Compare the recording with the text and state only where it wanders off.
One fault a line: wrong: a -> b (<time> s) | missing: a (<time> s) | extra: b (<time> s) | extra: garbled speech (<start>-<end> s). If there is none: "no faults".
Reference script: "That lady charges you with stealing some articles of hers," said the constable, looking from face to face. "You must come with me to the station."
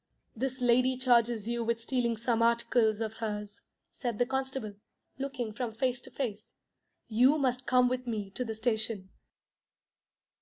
wrong: That -> This (0.3 s)